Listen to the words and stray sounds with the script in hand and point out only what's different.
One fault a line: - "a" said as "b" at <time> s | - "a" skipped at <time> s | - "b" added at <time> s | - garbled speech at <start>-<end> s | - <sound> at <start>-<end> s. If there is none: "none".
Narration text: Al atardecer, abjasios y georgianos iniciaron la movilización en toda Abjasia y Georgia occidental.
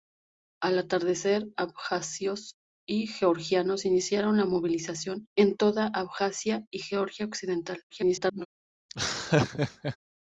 - garbled speech at 7.9-8.5 s
- laugh at 8.9-10.0 s